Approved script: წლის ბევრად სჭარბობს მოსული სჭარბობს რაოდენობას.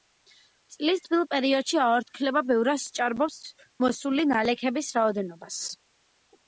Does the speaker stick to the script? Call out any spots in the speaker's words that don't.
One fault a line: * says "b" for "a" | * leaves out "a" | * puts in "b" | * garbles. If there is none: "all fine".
* puts in "თბილ პერიოდში აორთქლება"
* says "ნალექების" for "სჭარბობს"